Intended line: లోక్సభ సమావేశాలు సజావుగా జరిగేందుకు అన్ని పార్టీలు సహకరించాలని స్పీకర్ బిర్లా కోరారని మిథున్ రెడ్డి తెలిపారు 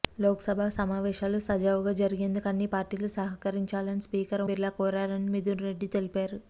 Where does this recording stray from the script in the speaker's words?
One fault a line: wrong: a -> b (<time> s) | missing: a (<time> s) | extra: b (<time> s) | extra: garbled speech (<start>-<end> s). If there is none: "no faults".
no faults